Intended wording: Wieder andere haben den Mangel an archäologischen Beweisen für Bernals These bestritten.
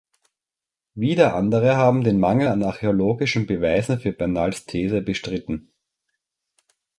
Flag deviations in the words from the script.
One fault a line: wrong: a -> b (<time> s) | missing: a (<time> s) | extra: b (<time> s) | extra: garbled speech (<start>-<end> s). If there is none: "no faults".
no faults